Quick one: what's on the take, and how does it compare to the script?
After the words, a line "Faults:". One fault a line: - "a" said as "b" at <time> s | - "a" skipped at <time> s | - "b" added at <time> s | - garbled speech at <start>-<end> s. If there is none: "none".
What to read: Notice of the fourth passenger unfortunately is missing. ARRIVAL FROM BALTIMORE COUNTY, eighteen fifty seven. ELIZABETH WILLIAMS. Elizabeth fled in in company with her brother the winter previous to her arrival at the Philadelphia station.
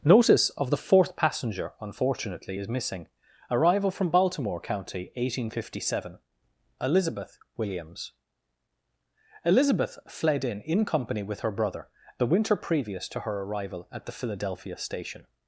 Notice of the fourth passenger unfortunately is missing. ARRIVAL FROM BALTIMORE COUNTY, eighteen fifty seven. ELIZABETH WILLIAMS. Elizabeth fled in in company with her brother the winter previous to her arrival at the Philadelphia station.
Faults:
none